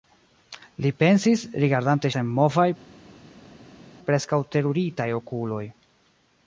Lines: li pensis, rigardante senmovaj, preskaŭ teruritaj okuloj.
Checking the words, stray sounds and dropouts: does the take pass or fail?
pass